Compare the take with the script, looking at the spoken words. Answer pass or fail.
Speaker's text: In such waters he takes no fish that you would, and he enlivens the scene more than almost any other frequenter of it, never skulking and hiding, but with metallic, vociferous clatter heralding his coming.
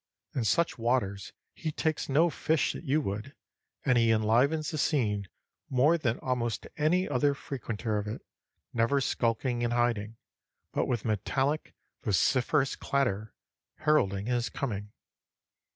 pass